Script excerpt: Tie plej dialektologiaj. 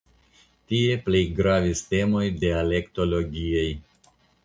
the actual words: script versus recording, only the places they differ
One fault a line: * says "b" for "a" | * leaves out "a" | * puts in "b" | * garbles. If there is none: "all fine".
* puts in "gravis temoj"